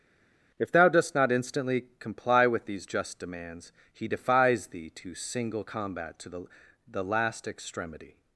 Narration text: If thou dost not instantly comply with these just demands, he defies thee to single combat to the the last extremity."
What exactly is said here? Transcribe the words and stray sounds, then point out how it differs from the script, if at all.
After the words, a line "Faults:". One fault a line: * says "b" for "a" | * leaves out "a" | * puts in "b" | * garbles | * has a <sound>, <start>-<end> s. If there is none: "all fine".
If thou dost not instantly comply with these just demands, he defies thee to single combat to the the last extremity."
Faults:
all fine